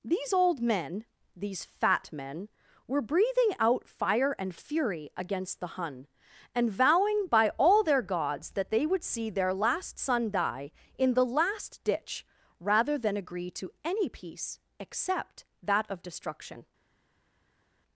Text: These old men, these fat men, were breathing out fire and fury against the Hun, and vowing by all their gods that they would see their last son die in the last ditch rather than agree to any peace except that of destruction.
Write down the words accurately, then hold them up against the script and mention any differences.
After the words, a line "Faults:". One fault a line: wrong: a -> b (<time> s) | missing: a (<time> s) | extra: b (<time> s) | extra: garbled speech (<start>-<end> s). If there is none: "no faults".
These old men, these fat men, were breathing out fire and fury against the Hun, and vowing by all their gods that they would see their last son die in the last ditch rather than agree to any peace except that of destruction.
Faults:
no faults